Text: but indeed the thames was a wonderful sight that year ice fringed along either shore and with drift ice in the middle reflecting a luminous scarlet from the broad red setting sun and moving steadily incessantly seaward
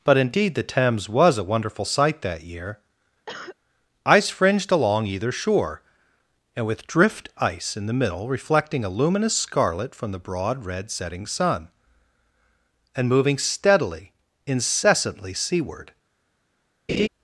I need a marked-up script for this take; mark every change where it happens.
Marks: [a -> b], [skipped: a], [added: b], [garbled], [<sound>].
but indeed the thames was a wonderful sight that year [cough] ice fringed along either shore and with drift ice in the middle reflecting a luminous scarlet from the broad red setting sun and moving steadily incessantly seaward [laugh]